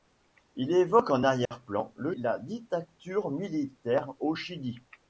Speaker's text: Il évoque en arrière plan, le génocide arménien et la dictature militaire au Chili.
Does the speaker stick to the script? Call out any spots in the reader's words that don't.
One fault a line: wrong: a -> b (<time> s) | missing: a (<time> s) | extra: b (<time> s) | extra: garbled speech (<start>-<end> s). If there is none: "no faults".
missing: génocide arménien et (2.1 s)